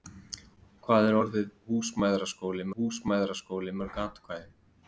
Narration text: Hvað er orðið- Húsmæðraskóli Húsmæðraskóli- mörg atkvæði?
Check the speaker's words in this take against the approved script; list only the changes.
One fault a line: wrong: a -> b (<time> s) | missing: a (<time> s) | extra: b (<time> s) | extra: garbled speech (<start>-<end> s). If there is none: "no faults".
no faults